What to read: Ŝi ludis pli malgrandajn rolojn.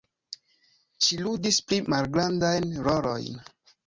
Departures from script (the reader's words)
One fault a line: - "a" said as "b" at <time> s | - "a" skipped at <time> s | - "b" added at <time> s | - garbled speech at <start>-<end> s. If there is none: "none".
none